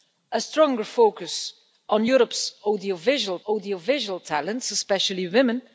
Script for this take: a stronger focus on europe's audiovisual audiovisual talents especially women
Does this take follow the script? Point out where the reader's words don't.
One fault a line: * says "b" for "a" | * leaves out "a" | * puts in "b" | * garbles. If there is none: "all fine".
all fine